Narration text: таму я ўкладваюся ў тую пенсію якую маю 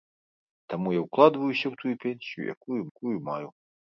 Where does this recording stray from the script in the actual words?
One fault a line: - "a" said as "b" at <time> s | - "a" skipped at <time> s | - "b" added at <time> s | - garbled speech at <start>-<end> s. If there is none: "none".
- "якую" added at 2.9 s